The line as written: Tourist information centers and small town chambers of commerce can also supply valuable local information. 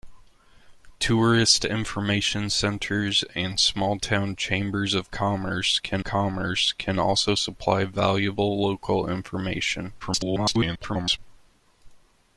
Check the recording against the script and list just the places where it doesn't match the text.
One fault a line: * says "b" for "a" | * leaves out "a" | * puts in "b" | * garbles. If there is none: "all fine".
* puts in "commerce can"
* garbles